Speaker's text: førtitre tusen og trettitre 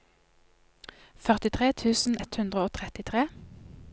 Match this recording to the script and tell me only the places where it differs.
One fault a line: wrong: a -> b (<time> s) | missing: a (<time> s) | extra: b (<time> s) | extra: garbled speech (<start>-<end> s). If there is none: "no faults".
extra: ett hundre (2.2 s)